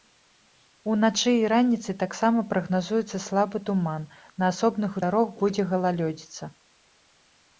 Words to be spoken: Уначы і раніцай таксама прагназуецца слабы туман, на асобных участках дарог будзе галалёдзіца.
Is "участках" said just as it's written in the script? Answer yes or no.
no